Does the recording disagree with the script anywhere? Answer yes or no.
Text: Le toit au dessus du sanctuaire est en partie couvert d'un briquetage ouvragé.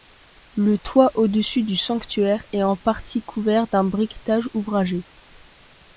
no